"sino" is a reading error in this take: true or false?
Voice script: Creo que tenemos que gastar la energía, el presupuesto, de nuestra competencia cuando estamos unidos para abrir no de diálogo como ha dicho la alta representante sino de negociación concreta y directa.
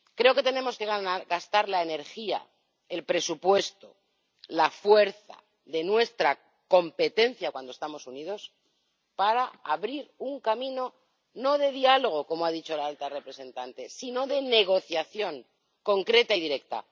false